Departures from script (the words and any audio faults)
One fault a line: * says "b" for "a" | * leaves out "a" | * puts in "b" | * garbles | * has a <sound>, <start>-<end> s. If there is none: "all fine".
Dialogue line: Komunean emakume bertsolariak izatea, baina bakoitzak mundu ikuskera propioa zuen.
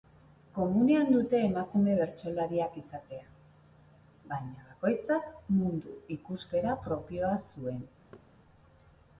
* puts in "dute"
* has a thud, 8.1-8.3 s